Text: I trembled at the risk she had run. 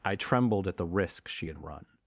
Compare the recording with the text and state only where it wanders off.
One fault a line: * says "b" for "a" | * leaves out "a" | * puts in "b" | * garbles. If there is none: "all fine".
all fine